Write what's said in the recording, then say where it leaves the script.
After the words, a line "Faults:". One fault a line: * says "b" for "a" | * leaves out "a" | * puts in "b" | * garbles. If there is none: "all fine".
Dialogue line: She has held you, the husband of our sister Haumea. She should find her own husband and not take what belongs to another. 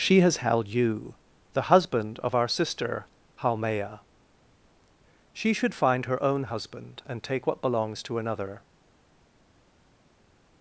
She has held you, the husband of our sister Haumea. She should find her own husband and take what belongs to another.
Faults:
* leaves out "not"